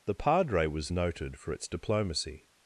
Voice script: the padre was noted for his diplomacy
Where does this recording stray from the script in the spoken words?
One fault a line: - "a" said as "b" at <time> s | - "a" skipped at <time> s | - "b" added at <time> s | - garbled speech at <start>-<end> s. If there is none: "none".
- "his" said as "its" at 1.5 s